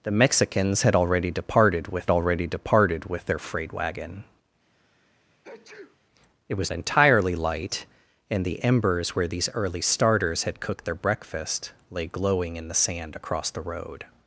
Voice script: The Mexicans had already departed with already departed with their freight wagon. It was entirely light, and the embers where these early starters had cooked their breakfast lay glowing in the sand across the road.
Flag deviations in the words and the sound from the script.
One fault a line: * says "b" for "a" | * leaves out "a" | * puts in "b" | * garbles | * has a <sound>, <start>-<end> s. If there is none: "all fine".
* has a sneeze, 4.7-6.0 s